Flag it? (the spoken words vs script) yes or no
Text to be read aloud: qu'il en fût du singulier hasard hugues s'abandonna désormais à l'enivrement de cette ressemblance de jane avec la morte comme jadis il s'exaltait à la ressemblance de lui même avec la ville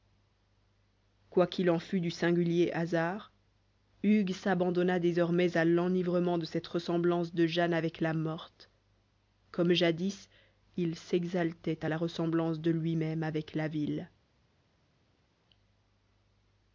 no